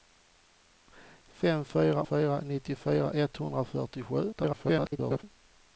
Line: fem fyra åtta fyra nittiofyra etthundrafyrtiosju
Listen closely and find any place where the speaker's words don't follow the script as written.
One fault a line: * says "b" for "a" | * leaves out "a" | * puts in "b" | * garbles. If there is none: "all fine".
* leaves out "åtta"
* garbles